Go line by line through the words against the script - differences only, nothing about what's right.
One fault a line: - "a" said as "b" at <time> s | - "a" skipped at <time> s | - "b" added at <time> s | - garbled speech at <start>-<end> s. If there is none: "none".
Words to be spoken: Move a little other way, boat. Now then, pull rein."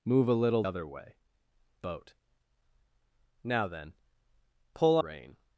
none